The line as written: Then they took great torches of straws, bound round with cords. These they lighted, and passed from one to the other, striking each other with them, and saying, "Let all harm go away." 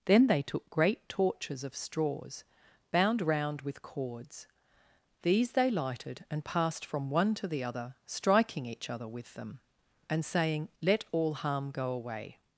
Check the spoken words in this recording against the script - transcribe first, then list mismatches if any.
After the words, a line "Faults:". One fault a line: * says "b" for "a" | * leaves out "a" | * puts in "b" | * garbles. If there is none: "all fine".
Then they took great torches of straws, bound round with cords. These they lighted, and passed from one to the other, striking each other with them, and saying, "Let all harm go away."
Faults:
all fine